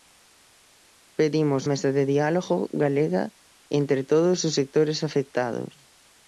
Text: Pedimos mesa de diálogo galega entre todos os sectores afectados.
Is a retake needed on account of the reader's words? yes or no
no